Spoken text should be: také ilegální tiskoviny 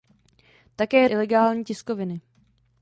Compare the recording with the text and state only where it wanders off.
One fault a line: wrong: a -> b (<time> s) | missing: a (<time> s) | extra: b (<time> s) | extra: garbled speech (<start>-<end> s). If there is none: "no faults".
no faults